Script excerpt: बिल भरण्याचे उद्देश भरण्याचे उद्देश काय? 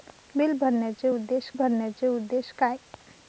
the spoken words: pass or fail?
pass